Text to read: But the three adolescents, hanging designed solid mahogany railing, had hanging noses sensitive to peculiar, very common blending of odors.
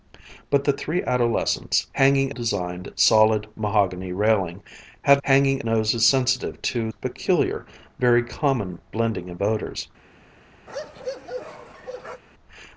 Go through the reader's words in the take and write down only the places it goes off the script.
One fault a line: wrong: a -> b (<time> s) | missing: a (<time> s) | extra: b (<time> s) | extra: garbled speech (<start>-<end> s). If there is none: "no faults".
no faults